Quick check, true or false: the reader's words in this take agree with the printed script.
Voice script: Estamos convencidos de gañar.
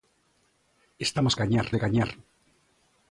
false